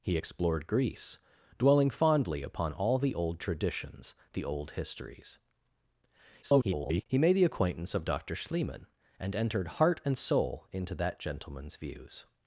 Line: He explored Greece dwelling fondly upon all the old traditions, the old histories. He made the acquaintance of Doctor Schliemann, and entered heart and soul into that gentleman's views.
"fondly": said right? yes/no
yes